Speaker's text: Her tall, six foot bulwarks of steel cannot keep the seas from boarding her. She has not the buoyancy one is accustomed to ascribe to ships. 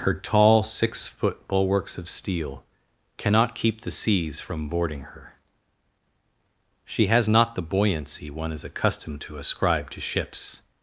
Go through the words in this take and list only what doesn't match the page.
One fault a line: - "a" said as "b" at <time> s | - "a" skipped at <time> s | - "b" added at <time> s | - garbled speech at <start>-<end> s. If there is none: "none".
none